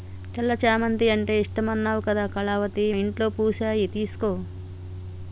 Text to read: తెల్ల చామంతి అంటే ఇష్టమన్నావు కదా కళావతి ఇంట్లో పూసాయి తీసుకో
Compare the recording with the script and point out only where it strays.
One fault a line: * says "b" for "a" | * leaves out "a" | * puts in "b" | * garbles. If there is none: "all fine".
all fine